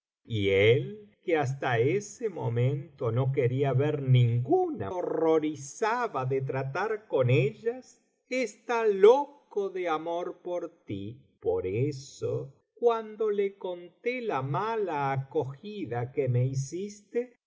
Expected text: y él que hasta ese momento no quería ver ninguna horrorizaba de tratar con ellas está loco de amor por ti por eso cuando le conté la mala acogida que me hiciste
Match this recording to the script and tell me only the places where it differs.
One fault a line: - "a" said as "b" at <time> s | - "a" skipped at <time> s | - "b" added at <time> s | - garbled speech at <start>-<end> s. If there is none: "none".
none